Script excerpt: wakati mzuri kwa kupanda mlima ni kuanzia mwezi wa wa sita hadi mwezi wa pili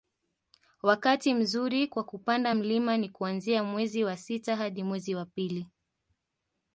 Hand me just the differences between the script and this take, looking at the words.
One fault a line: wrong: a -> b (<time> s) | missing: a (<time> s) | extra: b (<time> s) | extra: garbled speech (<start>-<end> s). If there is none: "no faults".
missing: wa (4.2 s)